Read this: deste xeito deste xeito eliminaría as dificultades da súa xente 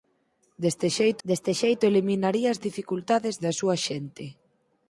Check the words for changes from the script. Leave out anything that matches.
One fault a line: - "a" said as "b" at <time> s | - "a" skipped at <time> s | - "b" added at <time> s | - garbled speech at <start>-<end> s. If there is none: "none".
none